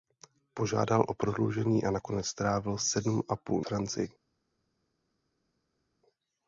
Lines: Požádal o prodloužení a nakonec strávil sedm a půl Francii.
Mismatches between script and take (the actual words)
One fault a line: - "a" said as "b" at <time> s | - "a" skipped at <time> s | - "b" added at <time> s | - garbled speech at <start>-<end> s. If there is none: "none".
none